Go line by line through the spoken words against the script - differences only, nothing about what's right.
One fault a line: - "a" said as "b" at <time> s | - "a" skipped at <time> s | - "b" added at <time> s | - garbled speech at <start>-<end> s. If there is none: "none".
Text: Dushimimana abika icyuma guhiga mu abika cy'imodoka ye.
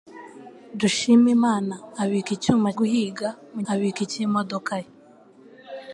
none